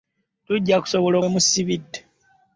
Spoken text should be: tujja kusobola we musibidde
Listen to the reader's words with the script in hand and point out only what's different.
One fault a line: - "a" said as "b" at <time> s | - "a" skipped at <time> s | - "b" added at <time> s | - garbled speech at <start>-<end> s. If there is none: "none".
none